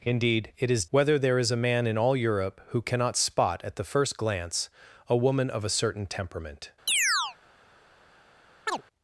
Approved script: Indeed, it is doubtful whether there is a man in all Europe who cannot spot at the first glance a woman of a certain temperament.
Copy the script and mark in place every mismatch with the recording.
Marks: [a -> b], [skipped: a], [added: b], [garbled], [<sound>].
Indeed, it is [skipped: doubtful] whether there is a man in all Europe who cannot spot at the first glance a woman of a certain temperament. [chirp] [chirp]